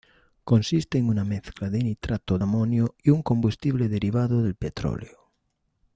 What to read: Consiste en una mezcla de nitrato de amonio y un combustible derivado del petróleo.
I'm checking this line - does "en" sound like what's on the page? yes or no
yes